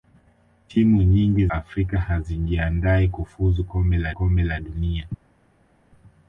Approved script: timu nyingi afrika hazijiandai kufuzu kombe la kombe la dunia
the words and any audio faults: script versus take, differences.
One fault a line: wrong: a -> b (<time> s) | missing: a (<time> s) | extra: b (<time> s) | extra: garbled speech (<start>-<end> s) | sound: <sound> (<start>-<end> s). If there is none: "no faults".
no faults